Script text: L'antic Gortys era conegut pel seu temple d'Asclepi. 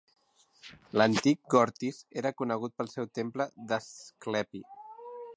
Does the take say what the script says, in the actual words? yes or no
yes